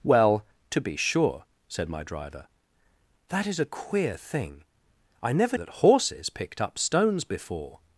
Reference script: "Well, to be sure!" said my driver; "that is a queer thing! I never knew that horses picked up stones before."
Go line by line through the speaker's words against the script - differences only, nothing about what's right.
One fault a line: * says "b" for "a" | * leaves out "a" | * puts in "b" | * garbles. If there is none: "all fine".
* leaves out "knew"